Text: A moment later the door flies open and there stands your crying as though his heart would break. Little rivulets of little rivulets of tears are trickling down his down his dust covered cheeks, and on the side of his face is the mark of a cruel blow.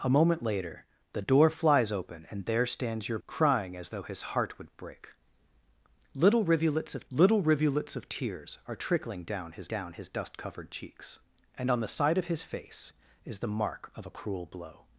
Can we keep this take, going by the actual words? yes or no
yes